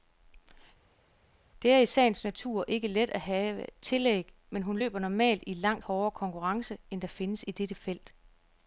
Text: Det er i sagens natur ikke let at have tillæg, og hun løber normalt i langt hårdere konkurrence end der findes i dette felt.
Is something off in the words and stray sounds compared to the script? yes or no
yes